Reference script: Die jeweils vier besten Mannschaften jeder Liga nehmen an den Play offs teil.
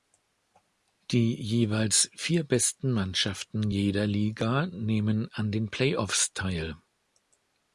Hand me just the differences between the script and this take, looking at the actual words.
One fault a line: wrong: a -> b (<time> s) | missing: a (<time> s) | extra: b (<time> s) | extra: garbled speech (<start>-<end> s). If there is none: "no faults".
no faults